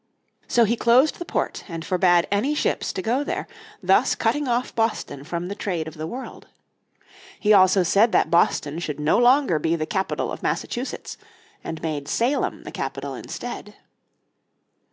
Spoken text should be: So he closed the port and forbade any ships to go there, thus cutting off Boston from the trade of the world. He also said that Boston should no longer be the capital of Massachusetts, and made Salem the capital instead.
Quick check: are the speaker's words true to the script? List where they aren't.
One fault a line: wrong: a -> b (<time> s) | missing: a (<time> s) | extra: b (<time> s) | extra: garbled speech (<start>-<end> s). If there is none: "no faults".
no faults